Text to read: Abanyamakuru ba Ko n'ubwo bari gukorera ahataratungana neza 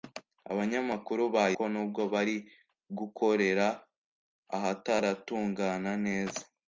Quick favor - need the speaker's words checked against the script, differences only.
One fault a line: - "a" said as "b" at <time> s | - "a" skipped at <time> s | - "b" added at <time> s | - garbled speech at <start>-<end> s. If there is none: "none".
none